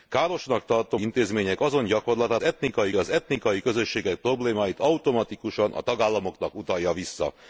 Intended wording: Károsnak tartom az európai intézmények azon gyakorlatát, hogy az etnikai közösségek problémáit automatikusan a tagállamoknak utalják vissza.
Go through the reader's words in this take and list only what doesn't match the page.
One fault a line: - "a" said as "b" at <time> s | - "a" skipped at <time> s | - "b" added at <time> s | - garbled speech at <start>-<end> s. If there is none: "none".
- "az európai" skipped at 1.0 s
- "hogy" said as "etnikai" at 2.4 s